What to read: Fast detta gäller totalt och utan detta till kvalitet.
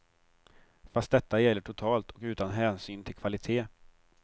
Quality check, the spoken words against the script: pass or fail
fail